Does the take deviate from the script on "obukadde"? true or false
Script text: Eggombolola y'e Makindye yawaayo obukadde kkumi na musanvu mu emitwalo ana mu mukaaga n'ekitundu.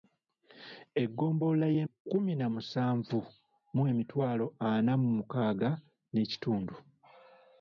true